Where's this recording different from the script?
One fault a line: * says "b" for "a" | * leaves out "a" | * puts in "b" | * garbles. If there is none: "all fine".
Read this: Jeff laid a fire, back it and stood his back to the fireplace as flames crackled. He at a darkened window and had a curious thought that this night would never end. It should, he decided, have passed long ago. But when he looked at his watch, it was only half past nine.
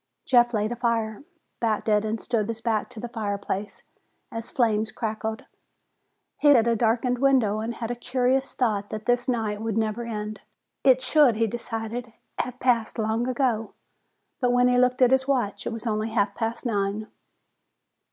all fine